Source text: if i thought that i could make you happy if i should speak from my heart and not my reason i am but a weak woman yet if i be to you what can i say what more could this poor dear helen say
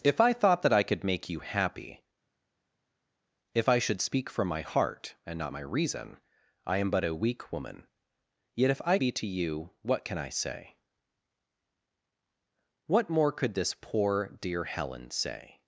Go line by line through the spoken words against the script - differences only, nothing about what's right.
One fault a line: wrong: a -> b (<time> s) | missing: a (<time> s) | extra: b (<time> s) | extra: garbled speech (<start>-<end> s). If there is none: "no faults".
no faults